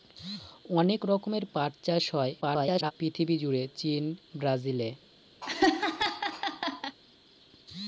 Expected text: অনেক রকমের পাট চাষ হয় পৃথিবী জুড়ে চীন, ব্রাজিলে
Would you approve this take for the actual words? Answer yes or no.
no